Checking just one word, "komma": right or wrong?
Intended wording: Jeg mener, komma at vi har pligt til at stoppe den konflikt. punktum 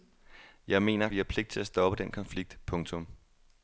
wrong